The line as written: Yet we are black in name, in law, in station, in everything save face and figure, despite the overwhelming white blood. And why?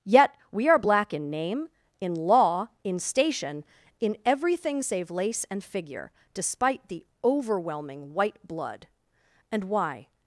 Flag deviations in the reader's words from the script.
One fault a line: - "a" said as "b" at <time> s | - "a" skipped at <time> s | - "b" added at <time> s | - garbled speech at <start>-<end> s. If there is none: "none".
- "face" said as "lace" at 5.1 s